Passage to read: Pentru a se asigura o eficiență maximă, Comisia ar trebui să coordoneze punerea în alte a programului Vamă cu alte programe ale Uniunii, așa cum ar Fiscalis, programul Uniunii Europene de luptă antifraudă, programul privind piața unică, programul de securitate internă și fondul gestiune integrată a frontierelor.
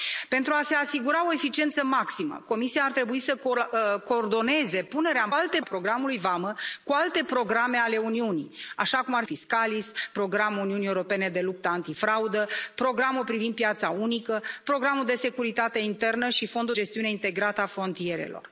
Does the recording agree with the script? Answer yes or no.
yes